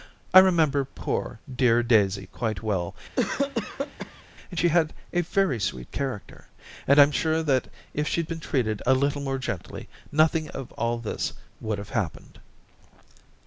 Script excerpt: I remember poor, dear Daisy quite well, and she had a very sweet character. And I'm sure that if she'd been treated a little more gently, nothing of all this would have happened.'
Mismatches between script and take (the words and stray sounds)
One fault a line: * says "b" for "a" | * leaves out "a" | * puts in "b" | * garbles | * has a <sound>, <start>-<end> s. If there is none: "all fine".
* has a cough, 3.2-4.2 s